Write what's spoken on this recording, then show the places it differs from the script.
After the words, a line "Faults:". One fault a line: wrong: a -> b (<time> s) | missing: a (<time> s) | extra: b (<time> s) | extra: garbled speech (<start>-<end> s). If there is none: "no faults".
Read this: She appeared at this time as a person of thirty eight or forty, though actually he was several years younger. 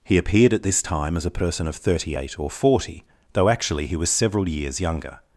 He appeared at this time as a person of thirty eight or forty, though actually he was several years younger.
Faults:
wrong: She -> He (0.0 s)